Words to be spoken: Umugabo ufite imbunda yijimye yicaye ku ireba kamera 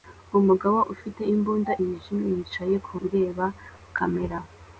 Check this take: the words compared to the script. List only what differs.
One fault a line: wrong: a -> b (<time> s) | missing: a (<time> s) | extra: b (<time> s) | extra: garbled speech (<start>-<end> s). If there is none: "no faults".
no faults